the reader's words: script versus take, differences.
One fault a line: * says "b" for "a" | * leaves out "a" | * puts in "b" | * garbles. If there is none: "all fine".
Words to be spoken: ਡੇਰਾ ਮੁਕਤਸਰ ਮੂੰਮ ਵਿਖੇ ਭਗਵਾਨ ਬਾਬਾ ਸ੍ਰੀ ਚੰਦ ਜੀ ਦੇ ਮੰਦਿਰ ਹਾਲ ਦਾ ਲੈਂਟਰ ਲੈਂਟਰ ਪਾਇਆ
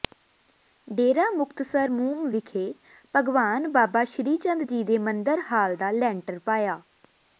* leaves out "ਲੈਂਟਰ"